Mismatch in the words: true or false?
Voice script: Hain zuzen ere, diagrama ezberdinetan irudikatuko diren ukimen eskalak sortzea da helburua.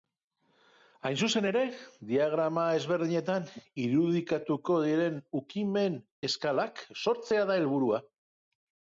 false